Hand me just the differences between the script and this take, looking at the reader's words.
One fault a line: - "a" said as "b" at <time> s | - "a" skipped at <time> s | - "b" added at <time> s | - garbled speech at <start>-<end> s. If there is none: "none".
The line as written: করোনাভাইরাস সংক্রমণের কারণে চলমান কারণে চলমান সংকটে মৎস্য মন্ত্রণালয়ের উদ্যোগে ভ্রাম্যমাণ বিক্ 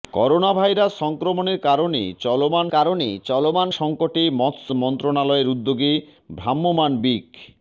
none